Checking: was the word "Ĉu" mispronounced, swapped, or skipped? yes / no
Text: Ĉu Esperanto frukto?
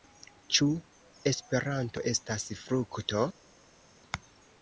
no